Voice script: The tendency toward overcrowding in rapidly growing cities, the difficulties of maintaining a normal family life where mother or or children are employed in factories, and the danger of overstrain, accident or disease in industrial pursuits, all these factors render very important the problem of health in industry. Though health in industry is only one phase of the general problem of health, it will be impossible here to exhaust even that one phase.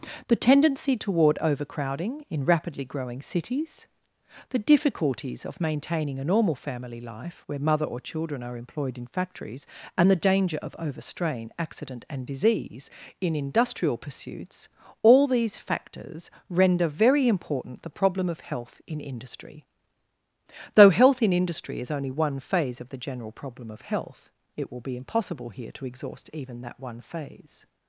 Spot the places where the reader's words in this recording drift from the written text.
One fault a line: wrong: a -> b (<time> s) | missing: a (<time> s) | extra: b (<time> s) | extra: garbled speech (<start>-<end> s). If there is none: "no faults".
missing: or (8.0 s)
wrong: or -> and (12.1 s)